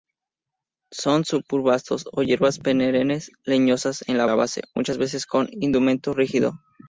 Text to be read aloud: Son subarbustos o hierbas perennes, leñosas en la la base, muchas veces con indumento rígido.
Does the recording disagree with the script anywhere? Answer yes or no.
no